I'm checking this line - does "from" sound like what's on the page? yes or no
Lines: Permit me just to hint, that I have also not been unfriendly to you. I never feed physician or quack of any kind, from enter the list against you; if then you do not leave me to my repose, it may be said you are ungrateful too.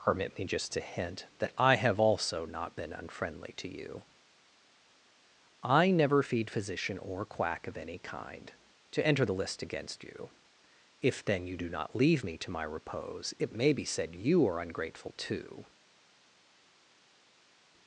no